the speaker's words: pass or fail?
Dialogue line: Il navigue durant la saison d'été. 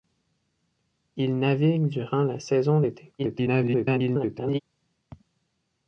fail